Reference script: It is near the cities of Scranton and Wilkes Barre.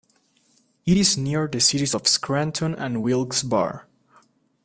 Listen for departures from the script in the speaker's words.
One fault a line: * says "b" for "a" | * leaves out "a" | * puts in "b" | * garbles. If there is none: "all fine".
all fine